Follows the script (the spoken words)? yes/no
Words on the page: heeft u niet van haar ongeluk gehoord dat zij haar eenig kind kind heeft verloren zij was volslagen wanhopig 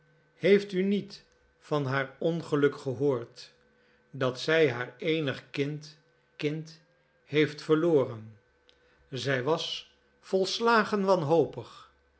yes